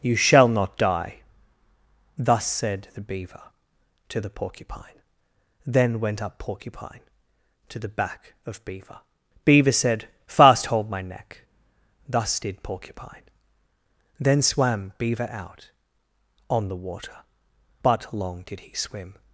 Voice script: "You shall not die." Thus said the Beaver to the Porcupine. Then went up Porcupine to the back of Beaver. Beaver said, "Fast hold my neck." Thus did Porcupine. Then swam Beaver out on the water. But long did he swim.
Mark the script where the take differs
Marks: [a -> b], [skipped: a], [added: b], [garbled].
"You shall not die." Thus said the Beaver to the Porcupine. Then went up Porcupine to the back of Beaver. Beaver said, "Fast hold my neck." Thus did Porcupine. Then swam Beaver out on the water. But long did he swim.